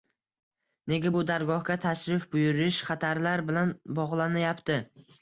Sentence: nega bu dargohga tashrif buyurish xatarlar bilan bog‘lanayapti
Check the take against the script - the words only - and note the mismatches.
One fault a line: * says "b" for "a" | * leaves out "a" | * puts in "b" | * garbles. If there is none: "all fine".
all fine